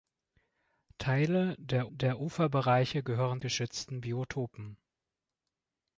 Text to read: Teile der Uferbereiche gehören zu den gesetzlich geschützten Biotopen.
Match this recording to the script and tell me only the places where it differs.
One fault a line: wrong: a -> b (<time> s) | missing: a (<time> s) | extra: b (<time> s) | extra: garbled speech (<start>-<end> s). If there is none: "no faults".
extra: der (1.9 s)
missing: zu den gesetzlich (3.4 s)